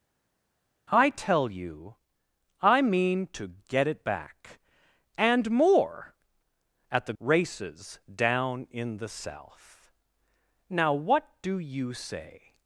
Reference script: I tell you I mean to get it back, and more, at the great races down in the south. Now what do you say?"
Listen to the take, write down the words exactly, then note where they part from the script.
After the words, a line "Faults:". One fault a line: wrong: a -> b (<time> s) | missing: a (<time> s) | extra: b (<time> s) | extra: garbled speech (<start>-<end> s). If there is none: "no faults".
I tell you I mean to get it back, and more, at the races down in the south. Now what do you say?"
Faults:
missing: great (7.1 s)